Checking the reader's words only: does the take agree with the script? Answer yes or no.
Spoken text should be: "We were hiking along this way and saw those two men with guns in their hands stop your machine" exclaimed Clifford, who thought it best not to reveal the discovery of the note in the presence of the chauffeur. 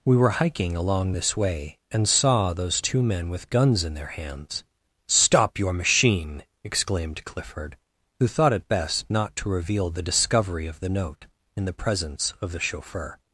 yes